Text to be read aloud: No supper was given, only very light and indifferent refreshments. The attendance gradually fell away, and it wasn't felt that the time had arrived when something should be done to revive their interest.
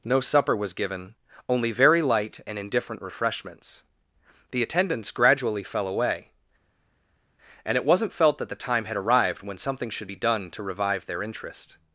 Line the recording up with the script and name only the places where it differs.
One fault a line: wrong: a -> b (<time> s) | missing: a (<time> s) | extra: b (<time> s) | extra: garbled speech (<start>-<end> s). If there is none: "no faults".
no faults